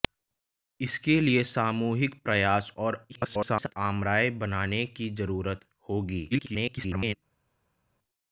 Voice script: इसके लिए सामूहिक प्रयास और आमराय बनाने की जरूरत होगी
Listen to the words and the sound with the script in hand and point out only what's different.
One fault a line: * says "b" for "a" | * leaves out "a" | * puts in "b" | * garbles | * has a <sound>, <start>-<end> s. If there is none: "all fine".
* garbles
* garbles